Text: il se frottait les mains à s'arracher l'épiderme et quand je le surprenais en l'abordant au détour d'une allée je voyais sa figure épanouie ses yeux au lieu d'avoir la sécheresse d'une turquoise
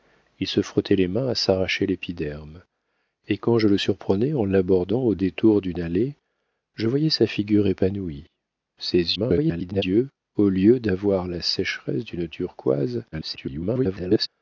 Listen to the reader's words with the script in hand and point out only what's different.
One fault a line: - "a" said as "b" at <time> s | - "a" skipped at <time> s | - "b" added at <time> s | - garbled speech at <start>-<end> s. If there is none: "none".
- garbled speech at 9.2-9.8 s
- garbled speech at 13.1-14.3 s